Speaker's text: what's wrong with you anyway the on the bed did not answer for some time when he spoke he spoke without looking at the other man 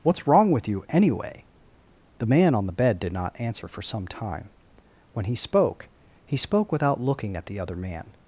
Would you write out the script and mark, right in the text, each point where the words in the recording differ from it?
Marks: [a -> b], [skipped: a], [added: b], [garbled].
what's wrong with you anyway the [added: man] on the bed did not answer for some time when he spoke he spoke without looking at the other man